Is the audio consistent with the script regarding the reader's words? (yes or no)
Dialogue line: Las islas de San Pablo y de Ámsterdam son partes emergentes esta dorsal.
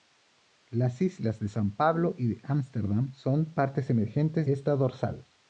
yes